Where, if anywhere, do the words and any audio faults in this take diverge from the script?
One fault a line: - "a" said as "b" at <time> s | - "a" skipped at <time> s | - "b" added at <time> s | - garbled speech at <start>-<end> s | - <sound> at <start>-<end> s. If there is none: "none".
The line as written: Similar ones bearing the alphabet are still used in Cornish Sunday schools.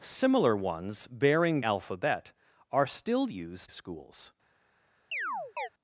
- "the" skipped at 1.6 s
- "in Cornish Sunday" skipped at 3.7 s
- chirp at 5.1-5.7 s